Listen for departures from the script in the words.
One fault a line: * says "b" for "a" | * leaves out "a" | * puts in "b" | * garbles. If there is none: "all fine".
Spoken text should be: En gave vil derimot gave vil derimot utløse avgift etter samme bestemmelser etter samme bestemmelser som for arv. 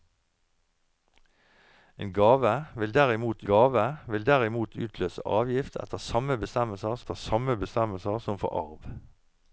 all fine